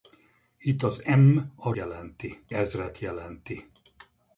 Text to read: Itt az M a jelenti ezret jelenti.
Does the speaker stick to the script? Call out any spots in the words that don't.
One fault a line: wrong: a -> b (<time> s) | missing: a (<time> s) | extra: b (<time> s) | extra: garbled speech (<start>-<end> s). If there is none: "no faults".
no faults